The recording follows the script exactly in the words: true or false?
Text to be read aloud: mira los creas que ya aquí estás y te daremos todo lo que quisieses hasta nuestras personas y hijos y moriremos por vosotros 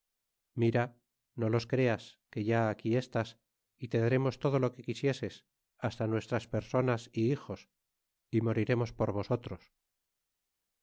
false